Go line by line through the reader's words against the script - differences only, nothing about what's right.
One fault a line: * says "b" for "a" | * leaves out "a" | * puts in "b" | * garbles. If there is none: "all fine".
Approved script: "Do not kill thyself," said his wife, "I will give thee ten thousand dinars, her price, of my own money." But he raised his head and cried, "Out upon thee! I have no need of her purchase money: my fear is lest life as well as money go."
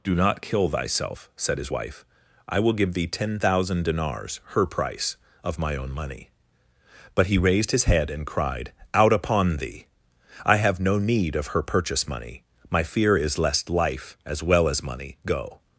all fine